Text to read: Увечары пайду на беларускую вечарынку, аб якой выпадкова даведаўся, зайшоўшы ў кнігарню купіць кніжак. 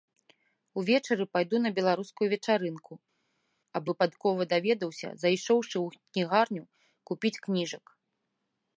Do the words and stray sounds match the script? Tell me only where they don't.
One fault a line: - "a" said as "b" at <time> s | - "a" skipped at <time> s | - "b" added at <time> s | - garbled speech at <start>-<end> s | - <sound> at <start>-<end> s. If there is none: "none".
- "якой" skipped at 3.8 s